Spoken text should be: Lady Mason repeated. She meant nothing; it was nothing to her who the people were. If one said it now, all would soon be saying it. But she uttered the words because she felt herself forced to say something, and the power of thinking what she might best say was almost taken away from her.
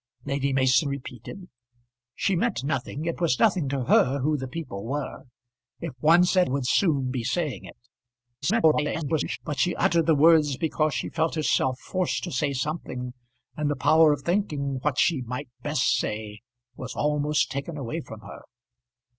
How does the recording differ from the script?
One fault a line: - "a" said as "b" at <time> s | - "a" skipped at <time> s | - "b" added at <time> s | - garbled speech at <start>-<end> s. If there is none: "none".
- "it now all" skipped at 6.5 s
- garbled speech at 8.4-9.4 s